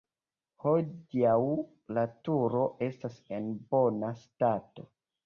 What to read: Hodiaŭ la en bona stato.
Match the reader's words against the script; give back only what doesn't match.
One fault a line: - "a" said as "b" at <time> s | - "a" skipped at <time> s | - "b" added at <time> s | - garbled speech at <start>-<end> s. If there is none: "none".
- "turo estas" added at 2.3 s